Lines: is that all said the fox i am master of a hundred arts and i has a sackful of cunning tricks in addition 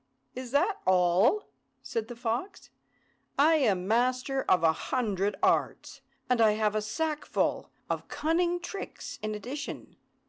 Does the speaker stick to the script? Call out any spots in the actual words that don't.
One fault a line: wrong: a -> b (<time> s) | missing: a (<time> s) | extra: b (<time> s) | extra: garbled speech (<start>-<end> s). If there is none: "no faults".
wrong: has -> have (6.5 s)